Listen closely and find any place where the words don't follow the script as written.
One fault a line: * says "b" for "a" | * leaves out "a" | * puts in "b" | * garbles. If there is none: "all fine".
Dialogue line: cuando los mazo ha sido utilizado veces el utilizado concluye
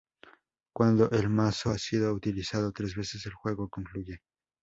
* says "el" for "los"
* puts in "tres"
* says "juego" for "utilizado"